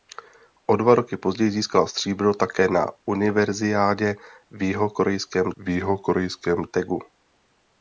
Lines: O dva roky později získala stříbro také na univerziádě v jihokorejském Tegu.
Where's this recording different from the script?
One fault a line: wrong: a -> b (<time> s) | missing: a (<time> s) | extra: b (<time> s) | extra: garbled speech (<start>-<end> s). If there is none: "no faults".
extra: v jihokorejském (5.6 s)